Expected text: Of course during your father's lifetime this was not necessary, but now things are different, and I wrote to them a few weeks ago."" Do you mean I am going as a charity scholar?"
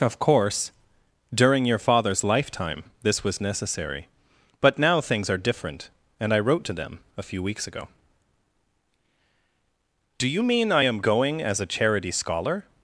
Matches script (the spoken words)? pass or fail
fail